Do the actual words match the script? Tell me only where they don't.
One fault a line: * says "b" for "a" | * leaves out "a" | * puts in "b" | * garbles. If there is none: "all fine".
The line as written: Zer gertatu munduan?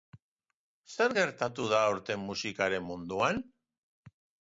* puts in "da aurten musikaren"